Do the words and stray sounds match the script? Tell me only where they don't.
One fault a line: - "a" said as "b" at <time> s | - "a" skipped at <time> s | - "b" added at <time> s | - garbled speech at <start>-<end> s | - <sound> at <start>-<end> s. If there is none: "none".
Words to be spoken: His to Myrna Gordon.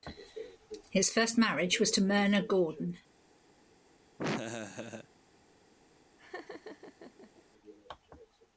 - "first marriage was" added at 1.1 s
- laugh at 4.2-5.1 s
- laugh at 6.2-7.5 s